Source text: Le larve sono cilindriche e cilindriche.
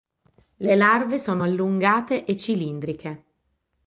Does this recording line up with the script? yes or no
no